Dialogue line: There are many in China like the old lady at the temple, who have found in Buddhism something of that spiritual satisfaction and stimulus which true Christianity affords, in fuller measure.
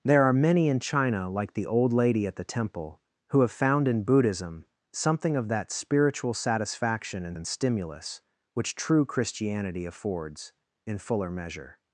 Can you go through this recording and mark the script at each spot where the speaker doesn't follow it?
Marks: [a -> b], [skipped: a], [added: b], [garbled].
There are many in China like the old lady at the temple, who have found in Buddhism something of that spiritual satisfaction and [added: and] stimulus which true Christianity affords, in fuller measure.